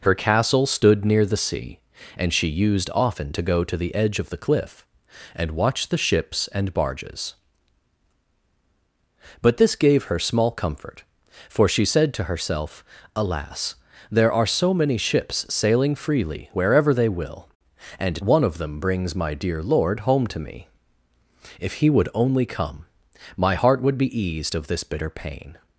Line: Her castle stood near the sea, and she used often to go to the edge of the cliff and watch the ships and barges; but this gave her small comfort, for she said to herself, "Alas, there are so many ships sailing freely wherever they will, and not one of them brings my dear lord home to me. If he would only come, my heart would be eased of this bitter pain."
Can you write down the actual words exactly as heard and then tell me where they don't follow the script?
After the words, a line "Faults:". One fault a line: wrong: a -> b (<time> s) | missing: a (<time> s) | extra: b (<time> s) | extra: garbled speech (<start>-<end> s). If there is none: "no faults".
Her castle stood near the sea, and she used often to go to the edge of the cliff and watch the ships and barges; but this gave her small comfort, for she said to herself, "Alas, there are so many ships sailing freely wherever they will, and one of them brings my dear lord home to me. If he would only come, my heart would be eased of this bitter pain."
Faults:
missing: not (18.2 s)